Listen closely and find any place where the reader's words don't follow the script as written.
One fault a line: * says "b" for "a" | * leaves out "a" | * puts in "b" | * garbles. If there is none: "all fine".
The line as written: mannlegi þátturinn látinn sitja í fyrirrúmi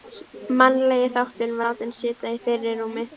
all fine